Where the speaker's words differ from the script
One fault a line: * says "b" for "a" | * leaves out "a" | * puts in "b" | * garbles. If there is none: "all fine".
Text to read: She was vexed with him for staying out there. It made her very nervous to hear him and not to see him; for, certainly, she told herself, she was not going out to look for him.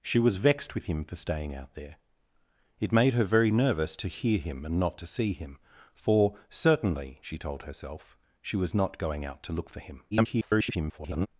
* garbles